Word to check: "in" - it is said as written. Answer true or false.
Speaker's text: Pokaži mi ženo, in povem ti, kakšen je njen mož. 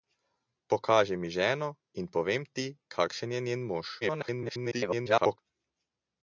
true